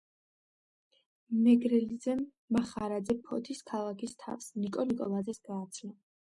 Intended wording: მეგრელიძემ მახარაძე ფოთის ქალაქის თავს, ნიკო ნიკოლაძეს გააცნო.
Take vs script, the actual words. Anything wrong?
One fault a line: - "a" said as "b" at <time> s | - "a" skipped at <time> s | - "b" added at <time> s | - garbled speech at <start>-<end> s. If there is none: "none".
none